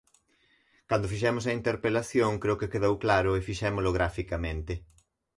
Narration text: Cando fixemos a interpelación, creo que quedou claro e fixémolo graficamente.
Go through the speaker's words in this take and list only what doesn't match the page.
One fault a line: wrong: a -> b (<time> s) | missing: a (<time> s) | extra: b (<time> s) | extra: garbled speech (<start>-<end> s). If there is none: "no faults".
no faults